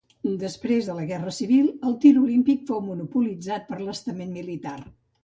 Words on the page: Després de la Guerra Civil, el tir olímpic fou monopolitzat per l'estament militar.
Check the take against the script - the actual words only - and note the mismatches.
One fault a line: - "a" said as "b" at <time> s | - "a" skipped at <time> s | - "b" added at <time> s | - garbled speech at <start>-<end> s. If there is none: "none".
none